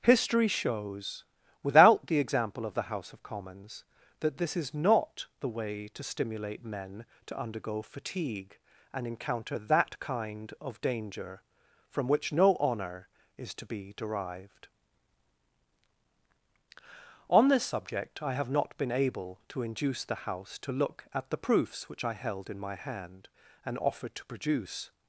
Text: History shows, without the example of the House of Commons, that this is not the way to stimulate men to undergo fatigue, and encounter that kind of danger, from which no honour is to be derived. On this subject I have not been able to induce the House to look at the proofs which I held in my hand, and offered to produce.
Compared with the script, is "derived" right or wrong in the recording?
right